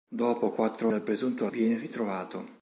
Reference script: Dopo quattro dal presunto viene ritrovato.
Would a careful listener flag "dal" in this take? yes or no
no